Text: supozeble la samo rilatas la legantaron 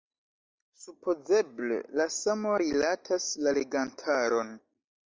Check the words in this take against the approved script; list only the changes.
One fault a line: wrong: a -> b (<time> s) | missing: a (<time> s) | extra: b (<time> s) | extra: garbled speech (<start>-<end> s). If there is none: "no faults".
no faults